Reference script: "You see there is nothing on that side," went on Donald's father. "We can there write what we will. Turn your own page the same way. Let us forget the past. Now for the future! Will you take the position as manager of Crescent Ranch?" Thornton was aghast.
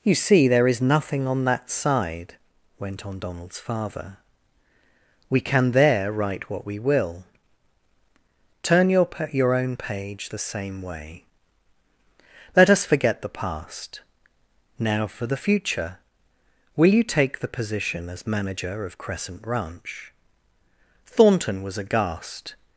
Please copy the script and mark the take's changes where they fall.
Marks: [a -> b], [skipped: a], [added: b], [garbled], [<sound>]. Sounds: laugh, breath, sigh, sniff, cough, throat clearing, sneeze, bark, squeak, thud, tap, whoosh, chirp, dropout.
"You see there is nothing on that side," went on Donald's father. "We can there write what we will. Turn your [added: your] own page the same way. Let us forget the past. Now for the future! Will you take the position as manager of Crescent Ranch?" Thornton was aghast.